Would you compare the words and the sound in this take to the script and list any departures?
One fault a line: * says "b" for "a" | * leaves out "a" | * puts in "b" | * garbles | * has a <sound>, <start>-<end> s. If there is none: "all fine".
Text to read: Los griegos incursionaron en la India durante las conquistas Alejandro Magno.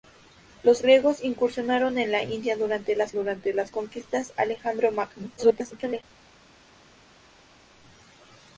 * puts in "durante las"
* garbles